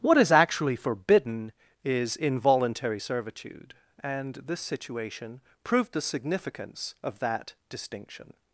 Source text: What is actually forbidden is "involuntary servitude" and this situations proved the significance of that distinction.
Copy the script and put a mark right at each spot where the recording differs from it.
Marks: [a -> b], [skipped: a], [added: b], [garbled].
What is actually forbidden is "involuntary servitude" and this [situations -> situation] proved the significance of that distinction.